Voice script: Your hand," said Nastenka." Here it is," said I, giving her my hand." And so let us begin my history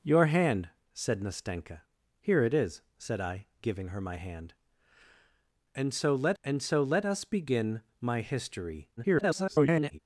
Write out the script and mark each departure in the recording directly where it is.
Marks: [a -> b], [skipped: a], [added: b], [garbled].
Your hand," said Nastenka." Here it is," said I, giving her my hand." And so let [added: and so let] us begin my history [garbled]